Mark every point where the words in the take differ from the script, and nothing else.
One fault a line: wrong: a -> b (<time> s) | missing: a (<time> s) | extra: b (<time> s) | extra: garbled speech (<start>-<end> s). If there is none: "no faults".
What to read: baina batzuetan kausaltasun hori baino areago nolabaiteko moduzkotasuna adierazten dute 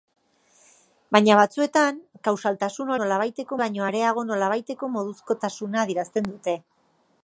wrong: hori -> nolabaiteko (3.0 s)